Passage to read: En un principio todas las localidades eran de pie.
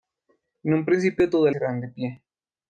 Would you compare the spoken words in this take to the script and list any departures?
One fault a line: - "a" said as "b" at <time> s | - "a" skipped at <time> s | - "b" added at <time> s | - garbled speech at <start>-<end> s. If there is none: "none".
- "las localidades" skipped at 1.5 s